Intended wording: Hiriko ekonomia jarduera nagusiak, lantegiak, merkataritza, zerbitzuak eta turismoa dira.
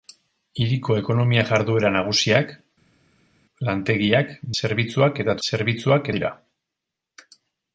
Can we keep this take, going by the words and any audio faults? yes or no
no